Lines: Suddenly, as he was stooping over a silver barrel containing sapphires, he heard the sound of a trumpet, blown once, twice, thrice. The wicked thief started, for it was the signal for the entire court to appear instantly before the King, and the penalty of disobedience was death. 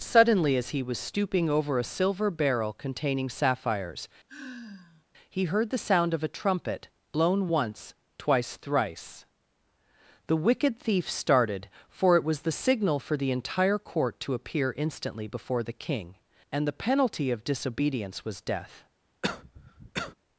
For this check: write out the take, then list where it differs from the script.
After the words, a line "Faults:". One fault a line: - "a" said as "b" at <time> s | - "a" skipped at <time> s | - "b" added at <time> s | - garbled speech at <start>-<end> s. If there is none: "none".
Suddenly, as he was stooping over a silver barrel containing sapphires, he heard the sound of a trumpet, blown once, twice, thrice. The wicked thief started, for it was the signal for the entire court to appear instantly before the King, and the penalty of disobedience was death.
Faults:
none